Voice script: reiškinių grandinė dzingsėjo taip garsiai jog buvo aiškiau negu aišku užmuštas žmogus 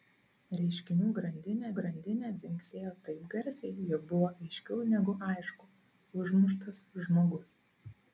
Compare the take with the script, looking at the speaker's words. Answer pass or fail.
fail